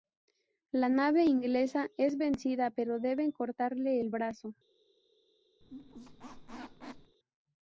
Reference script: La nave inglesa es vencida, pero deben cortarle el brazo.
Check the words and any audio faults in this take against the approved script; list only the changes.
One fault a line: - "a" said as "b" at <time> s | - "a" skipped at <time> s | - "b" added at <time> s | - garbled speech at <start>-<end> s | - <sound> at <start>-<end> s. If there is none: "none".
- squeak at 5.6-7.2 s